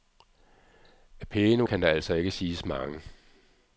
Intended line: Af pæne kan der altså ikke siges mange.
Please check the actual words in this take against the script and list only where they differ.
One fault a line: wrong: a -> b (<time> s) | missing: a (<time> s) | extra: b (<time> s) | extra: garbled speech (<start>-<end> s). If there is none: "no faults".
no faults